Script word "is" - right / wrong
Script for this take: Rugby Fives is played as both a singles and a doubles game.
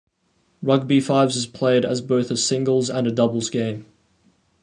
right